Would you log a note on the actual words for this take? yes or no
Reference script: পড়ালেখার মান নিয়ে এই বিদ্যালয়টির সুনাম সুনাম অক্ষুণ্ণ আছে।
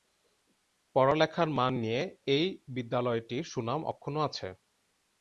yes